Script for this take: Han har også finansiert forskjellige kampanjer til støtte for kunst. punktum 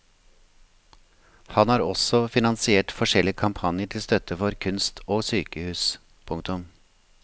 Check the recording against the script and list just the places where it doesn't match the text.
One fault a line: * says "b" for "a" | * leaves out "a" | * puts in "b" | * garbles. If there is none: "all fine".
* puts in "og sykehus"